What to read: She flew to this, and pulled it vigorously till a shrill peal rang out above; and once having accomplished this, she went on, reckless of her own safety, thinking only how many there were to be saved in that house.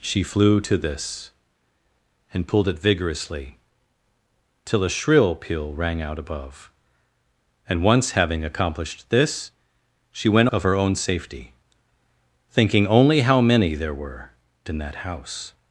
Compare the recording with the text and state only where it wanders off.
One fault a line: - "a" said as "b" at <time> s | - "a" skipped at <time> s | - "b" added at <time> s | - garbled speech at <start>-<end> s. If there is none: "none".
- "on reckless" skipped at 10.5 s
- "to be saved" skipped at 14.3 s